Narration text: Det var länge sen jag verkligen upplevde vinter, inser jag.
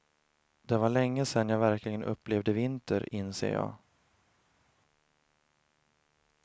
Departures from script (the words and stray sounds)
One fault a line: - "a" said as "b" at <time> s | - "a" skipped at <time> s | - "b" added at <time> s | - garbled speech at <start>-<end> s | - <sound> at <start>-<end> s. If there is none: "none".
none